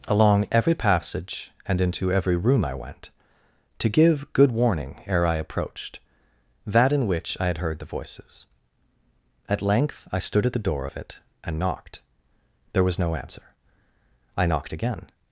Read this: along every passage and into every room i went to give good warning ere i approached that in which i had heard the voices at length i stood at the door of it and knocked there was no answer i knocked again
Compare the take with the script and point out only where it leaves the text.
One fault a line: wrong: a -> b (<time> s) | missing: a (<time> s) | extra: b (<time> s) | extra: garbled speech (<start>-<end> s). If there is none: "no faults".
no faults